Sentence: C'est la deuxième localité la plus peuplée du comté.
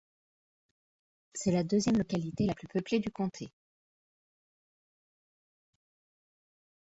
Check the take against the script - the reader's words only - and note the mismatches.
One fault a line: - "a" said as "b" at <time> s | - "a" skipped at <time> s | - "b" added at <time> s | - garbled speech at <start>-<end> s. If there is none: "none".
none